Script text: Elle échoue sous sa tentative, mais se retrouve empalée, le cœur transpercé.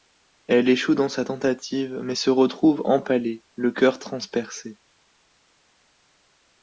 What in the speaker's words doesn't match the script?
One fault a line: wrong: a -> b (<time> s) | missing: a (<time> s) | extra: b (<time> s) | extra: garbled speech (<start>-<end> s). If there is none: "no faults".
wrong: sous -> dans (0.9 s)